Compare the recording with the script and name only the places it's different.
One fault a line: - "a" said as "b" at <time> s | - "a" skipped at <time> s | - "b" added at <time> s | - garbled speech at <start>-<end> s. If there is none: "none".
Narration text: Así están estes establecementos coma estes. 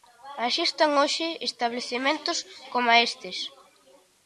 - "estes" said as "hoxe" at 1.0 s